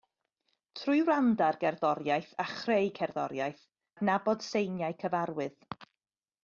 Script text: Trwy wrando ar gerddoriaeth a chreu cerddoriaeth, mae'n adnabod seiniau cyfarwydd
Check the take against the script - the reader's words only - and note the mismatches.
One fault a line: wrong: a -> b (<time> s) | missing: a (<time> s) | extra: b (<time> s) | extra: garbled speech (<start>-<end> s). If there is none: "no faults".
missing: mae'n (3.6 s)